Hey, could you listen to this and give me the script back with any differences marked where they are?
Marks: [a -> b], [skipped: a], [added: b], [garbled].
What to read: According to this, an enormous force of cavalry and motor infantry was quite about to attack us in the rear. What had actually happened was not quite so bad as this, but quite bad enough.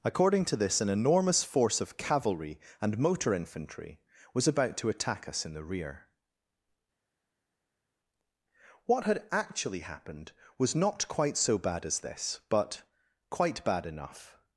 According to this, an enormous force of cavalry and motor infantry was [skipped: quite] about to attack us in the rear. What had actually happened was not quite so bad as this, but quite bad enough.